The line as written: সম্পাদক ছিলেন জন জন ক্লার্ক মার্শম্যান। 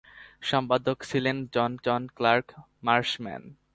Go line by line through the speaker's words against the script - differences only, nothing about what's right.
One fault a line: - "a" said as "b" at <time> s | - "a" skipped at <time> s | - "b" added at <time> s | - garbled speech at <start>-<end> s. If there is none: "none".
none